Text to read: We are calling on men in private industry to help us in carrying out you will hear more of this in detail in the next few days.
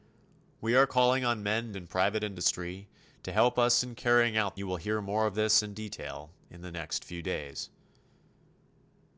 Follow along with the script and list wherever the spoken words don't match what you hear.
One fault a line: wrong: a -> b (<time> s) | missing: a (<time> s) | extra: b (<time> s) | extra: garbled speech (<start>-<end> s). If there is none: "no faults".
no faults